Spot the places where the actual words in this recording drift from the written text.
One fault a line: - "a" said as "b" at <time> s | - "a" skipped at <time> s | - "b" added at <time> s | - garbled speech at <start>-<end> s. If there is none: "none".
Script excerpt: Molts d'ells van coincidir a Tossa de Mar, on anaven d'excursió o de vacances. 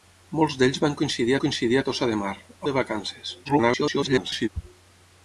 - "coincidir" added at 1.4 s
- "on anaven d'excursió" skipped at 2.3 s
- garbled speech at 3.4-4.5 s